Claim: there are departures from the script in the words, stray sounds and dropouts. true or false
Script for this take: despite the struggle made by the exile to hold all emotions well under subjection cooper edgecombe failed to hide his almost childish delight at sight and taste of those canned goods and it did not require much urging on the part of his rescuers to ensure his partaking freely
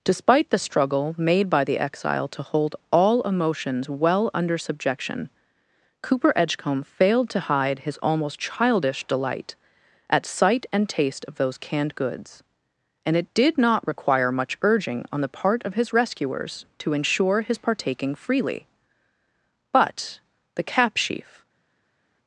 true